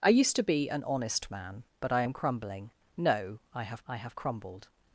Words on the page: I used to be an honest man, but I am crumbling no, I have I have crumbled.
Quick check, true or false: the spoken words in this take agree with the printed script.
true